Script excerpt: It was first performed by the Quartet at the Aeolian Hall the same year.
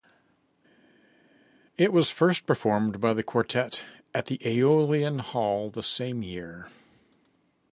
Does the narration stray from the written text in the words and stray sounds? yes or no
no